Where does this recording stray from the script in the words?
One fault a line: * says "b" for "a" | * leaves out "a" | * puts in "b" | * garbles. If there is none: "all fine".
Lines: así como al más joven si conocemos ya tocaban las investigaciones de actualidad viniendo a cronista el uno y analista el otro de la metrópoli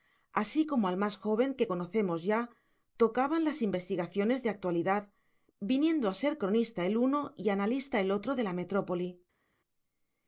* says "que" for "si"
* puts in "ser"